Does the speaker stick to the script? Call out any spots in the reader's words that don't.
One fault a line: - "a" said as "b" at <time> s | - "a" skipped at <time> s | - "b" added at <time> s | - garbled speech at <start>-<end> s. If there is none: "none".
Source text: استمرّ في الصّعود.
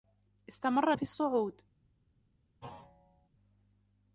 none